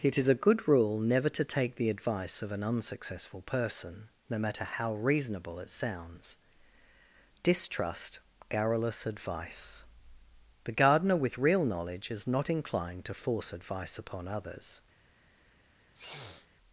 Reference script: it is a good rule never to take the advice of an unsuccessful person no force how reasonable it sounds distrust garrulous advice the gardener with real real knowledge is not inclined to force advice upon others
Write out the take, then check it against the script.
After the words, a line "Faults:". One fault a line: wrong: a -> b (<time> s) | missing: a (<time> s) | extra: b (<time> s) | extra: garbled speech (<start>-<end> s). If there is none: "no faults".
it is a good rule never to take the advice of an unsuccessful person no matter how reasonable it sounds distrust garrulous advice the gardener with real knowledge is not inclined to force advice upon others
Faults:
wrong: force -> matter (4.4 s)
missing: real (11.6 s)